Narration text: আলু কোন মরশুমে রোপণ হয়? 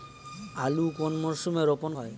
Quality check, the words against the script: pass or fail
pass